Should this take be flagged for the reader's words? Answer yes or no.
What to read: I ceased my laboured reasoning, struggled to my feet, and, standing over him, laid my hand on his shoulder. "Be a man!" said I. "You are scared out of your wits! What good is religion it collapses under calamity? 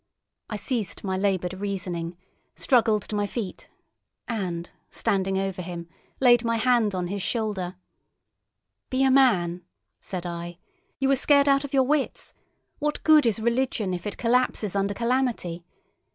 yes